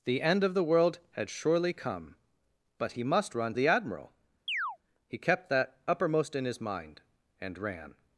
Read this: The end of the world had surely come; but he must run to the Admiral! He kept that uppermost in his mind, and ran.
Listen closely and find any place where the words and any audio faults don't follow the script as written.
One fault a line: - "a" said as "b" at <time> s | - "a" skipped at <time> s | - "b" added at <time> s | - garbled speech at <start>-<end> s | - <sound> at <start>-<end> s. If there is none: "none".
- "to" skipped at 3.5 s
- chirp at 4.5-4.8 s